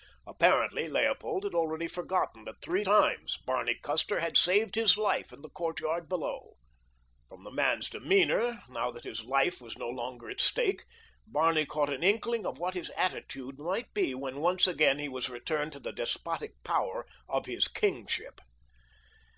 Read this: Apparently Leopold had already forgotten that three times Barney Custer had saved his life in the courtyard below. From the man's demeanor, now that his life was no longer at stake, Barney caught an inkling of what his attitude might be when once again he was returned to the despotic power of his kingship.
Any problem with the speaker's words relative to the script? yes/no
no